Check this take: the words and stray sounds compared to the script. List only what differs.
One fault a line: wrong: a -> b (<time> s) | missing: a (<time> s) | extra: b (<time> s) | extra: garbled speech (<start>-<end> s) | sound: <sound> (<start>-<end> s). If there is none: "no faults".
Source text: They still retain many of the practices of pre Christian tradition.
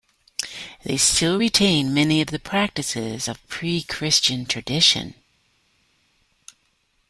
no faults